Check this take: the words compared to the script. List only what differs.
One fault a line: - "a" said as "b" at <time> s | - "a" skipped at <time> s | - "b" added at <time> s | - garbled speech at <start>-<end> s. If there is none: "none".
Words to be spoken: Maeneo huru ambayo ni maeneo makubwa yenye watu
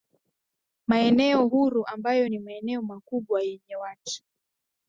none